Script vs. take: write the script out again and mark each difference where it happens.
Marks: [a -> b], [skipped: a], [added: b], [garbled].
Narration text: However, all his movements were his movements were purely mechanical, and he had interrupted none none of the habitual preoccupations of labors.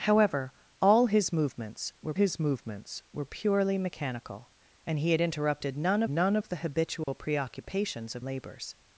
However, all his movements were his movements were purely mechanical, and he had interrupted none none of the habitual preoccupations of labors.